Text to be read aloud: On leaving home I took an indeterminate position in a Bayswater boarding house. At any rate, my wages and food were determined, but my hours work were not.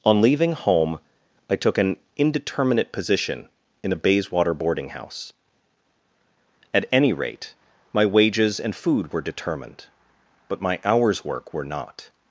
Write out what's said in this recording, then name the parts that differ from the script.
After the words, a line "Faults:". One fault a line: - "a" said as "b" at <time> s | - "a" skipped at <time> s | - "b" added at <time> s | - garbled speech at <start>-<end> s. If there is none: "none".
On leaving home I took an indeterminate position in a Bayswater boarding house. At any rate, my wages and food were determined, but my hours work were not.
Faults:
none